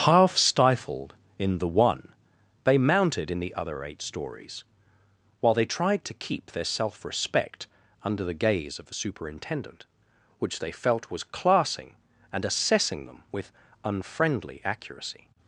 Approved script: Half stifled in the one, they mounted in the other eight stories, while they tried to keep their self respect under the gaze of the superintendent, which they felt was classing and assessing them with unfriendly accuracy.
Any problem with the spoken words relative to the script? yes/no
no